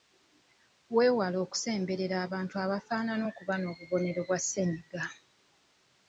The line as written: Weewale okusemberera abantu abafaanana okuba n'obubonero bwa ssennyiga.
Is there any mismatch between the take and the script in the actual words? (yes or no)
no